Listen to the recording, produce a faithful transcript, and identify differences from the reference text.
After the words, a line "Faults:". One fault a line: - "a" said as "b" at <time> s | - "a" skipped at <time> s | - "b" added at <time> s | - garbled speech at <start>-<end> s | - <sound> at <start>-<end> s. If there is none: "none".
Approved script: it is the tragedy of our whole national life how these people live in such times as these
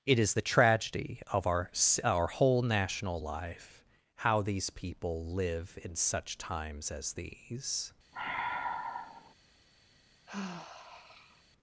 it is the tragedy of our our whole national life how these people live in such times as these
Faults:
- "our" added at 2.0 s
- sigh at 8.1-9.3 s
- sigh at 10.3-11.4 s